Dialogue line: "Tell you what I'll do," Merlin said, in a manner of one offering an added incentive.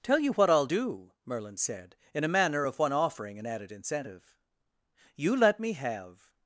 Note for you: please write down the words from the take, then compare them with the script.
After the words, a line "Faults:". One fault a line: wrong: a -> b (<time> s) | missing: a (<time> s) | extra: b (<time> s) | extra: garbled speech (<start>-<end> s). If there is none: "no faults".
"Tell you what I'll do," Merlin said, in a manner of one offering an added incentive. "You let me have
Faults:
extra: You let me have (5.2 s)